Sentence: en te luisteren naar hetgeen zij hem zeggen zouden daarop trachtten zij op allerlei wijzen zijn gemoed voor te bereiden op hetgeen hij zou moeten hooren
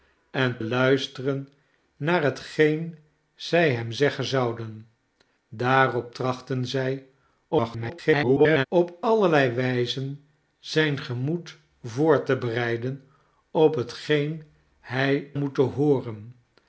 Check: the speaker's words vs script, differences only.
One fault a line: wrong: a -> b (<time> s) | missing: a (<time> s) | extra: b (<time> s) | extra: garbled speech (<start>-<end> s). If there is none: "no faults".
missing: te (0.6 s)
extra: garbled speech (7.5-8.7 s)
missing: zou (15.3 s)